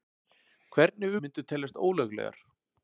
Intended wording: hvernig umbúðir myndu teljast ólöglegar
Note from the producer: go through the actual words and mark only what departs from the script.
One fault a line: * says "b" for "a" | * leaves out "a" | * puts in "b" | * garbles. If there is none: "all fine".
* leaves out "umbúðir"